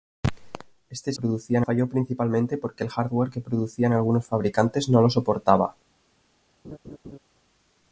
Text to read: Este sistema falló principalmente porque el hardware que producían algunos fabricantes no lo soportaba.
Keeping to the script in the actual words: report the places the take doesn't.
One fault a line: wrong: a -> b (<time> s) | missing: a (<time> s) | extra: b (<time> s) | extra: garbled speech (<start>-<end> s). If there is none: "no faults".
wrong: sistema -> producían (1.1 s)